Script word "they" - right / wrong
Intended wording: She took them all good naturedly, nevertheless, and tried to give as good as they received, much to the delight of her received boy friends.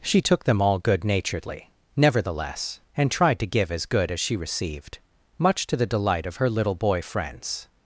wrong